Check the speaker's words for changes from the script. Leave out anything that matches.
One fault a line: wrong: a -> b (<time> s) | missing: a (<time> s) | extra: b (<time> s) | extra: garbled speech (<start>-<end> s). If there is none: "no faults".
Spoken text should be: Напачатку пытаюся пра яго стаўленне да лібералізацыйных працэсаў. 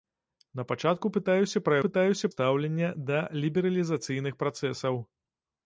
wrong: яго -> пытаюся (1.9 s)